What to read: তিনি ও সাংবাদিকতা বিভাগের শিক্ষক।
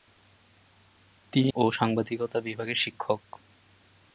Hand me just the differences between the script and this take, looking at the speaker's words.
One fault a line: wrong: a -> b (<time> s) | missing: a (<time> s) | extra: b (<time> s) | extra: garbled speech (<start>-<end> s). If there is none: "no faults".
no faults